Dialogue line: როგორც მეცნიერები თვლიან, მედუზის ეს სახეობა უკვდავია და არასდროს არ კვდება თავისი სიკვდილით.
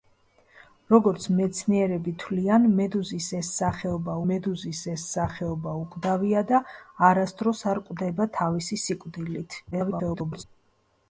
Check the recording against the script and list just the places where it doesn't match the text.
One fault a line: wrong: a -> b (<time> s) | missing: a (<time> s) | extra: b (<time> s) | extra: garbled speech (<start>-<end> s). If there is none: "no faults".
extra: მედუზის ეს სახეობა (4.3 s)
extra: garbled speech (9.7-10.4 s)